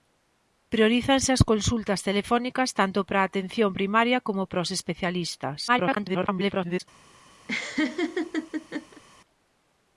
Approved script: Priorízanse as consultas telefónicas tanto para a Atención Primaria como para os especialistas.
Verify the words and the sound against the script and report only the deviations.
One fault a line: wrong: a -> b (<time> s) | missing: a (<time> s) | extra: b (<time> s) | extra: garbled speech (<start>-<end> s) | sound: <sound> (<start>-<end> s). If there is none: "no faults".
extra: garbled speech (5.7-6.8 s)
sound: laugh (7.5-9.0 s)